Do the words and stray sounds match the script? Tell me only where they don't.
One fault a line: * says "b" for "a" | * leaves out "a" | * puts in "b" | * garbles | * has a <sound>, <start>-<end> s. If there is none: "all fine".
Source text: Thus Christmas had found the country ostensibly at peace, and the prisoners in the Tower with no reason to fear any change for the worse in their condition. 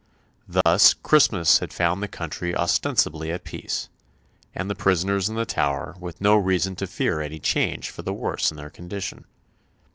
* has a dropout, 0.6-0.7 s